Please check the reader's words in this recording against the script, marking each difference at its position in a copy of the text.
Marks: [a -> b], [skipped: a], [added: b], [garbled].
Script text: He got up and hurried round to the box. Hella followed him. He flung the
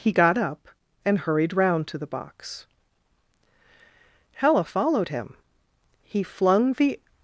He got up and hurried round to the box. Hella followed him. He flung the